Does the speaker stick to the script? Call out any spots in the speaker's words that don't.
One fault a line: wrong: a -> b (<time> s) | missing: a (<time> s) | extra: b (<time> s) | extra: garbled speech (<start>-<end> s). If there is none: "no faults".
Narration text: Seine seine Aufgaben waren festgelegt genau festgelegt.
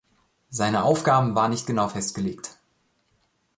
missing: seine (0.8 s)
wrong: festgelegt -> nicht (1.5 s)